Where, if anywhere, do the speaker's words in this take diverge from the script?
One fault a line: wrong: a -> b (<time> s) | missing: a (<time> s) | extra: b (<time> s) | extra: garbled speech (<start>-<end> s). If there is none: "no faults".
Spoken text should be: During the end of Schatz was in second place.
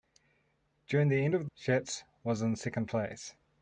no faults